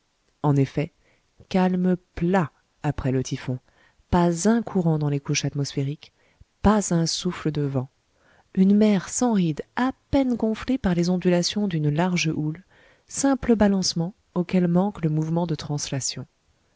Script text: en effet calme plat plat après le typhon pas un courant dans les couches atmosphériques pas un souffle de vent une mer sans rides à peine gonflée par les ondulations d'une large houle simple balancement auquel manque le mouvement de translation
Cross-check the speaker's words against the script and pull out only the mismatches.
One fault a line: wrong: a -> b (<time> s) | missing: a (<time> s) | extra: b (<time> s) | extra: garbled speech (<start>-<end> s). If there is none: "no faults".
missing: plat (2.5 s)